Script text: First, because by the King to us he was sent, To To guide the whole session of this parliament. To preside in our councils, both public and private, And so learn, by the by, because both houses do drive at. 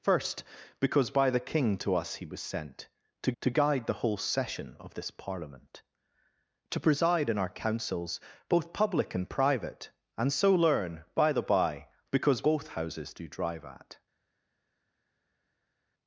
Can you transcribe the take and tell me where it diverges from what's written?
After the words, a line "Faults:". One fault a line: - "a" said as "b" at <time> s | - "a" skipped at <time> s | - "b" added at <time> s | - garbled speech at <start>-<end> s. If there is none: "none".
First, because by the King to us he was sent, To To guide the whole session of this parliament. To preside in our councils, both public and private, And so learn, by the by, because both houses do drive at.
Faults:
none